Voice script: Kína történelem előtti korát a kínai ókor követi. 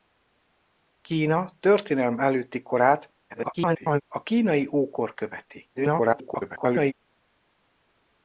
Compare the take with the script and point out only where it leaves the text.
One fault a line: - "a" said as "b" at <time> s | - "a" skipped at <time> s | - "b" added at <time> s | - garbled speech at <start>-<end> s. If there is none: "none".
- garbled speech at 3.3-4.0 s
- garbled speech at 5.7-6.9 s